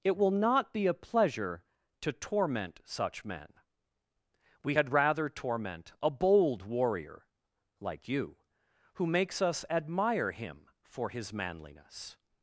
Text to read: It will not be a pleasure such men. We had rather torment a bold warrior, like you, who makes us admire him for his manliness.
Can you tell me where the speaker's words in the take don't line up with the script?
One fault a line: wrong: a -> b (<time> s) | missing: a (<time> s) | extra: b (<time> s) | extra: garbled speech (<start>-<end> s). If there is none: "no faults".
extra: to torment (2.0 s)